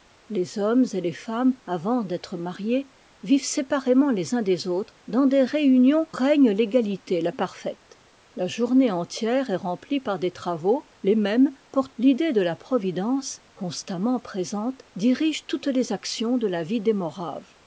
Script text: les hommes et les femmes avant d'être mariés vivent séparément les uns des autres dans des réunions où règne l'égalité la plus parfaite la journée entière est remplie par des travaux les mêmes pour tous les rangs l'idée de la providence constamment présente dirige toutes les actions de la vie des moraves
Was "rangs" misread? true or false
true